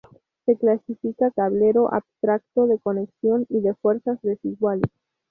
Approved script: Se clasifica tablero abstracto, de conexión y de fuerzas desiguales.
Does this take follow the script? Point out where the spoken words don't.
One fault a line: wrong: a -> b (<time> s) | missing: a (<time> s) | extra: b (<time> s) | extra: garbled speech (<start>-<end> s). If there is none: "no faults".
no faults